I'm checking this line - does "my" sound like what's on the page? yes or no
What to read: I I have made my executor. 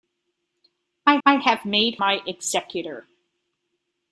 yes